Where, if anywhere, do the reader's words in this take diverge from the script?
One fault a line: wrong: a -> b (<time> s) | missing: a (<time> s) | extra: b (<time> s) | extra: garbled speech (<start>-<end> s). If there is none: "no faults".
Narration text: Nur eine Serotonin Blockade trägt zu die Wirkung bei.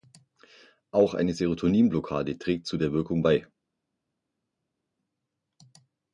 wrong: Nur -> Auch (0.9 s)
wrong: die -> der (2.8 s)